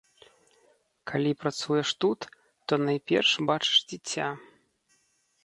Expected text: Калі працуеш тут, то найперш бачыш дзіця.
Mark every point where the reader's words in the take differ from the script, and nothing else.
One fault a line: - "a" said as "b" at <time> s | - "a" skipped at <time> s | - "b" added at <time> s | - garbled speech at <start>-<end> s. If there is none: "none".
none